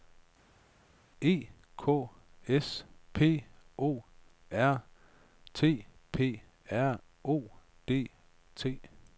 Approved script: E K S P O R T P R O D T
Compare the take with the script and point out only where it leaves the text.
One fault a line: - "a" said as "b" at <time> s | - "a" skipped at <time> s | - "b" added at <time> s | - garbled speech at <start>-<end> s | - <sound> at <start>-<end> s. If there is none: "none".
none